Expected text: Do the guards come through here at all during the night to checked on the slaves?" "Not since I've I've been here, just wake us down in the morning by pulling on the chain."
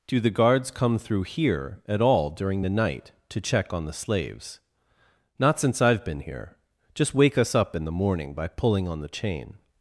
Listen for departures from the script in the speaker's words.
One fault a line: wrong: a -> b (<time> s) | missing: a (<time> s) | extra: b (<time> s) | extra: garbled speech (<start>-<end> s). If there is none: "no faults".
wrong: checked -> check (3.4 s)
missing: I've (6.0 s)
wrong: down -> up (7.5 s)